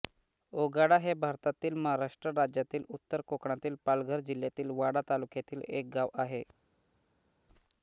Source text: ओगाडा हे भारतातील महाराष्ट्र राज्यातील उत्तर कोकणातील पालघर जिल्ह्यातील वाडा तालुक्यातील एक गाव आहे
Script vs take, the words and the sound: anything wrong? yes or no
no